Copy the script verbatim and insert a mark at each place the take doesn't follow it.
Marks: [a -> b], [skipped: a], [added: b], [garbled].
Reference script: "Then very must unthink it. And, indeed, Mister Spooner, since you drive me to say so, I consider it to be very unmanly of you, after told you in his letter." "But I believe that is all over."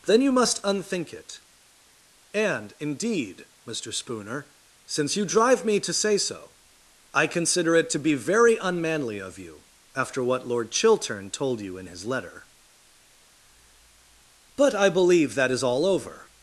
"Then [very -> you] must unthink it. And, indeed, Mister Spooner, since you drive me to say so, I consider it to be very unmanly of you, after [added: what Lord Chiltern] told you in his letter." "But I believe that is all over."